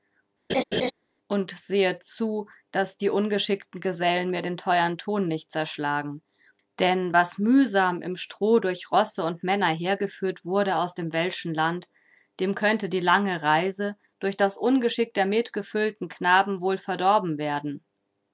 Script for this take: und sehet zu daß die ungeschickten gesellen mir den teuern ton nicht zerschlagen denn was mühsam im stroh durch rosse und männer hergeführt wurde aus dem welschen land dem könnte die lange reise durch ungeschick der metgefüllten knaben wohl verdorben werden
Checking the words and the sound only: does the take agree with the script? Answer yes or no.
no